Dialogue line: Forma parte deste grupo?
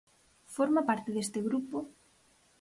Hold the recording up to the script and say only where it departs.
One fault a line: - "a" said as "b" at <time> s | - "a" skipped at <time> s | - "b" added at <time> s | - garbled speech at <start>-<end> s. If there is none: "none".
none